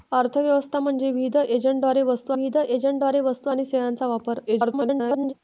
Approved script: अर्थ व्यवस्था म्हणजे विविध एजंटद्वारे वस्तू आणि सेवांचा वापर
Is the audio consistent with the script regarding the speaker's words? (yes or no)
no